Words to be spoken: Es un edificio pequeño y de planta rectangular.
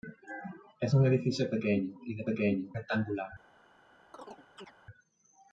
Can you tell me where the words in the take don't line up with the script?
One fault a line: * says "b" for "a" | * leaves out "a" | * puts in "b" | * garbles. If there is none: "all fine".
* says "pequeño" for "planta"